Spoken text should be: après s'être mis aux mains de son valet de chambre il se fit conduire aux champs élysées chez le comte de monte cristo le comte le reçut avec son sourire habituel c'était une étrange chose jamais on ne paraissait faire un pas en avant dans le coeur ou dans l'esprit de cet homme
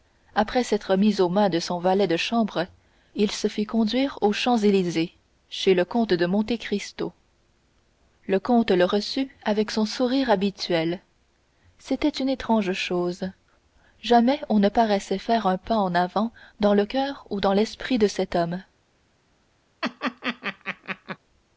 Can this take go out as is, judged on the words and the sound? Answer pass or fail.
fail